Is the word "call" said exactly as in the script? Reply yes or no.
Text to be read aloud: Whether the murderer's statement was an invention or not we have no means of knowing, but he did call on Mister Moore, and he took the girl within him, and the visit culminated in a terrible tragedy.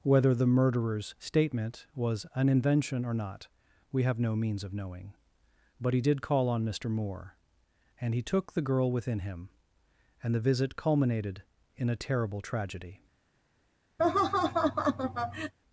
yes